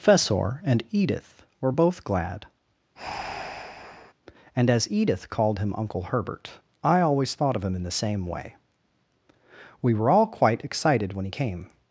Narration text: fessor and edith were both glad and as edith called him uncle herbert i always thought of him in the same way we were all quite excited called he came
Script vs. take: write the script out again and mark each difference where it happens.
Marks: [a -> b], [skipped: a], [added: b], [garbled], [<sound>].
fessor and edith were both glad [breath] and as edith called him uncle herbert i always thought of him in the same way we were all quite excited [called -> when] he came